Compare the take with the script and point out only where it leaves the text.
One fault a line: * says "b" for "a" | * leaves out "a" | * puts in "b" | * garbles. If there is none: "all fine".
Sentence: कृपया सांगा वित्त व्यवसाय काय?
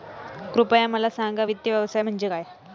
* puts in "मला"
* puts in "म्हणजे"